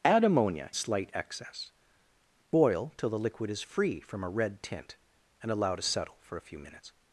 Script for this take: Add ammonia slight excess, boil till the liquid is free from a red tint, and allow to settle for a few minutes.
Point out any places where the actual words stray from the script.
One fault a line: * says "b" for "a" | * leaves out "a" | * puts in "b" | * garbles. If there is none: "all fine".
all fine